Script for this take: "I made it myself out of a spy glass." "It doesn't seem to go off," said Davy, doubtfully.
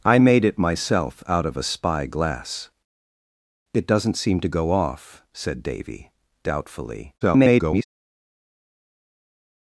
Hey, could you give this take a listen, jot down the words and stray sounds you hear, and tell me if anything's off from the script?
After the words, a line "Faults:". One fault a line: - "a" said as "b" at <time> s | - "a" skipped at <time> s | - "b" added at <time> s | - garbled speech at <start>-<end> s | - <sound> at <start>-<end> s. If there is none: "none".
"I made it myself out of a spy glass." "It doesn't seem to go off," said Davy, doubtfully. [garbled]
Faults:
- garbled speech at 7.2-7.8 s